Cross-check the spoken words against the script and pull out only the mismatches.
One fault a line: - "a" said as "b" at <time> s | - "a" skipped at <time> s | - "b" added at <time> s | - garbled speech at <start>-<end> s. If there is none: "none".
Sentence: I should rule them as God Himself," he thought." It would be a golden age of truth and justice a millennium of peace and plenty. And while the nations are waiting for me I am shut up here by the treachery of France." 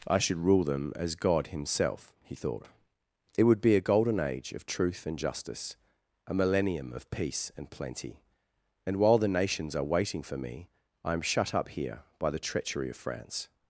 none